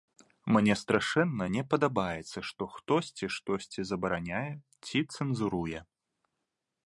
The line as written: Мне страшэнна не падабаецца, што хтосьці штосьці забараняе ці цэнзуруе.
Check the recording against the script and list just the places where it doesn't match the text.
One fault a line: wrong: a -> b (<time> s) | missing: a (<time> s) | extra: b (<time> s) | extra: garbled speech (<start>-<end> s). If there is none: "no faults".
no faults